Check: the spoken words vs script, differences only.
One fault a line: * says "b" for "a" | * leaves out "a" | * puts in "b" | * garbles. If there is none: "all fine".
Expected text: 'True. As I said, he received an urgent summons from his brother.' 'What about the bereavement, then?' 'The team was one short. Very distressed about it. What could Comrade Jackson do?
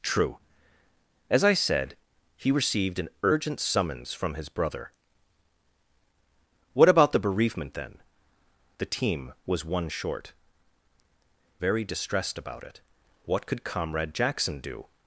all fine